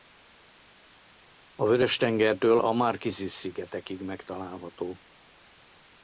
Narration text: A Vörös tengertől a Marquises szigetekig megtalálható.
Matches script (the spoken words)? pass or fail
pass